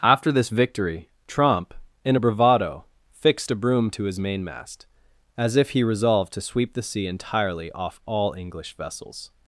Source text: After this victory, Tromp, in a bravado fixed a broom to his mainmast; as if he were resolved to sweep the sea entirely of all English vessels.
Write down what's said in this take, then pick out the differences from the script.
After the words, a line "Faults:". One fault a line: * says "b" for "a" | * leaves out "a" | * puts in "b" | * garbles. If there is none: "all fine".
After this victory, Tromp, in a bravado fixed a broom to his mainmast; as if he resolved to sweep the sea entirely off all English vessels.
Faults:
* leaves out "were"
* says "off" for "of"